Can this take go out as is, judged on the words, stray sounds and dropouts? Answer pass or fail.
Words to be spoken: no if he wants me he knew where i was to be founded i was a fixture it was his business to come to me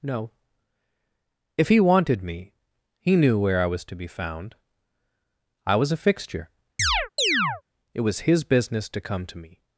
fail